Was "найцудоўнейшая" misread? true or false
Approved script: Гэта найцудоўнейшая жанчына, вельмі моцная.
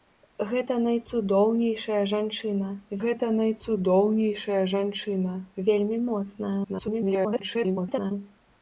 false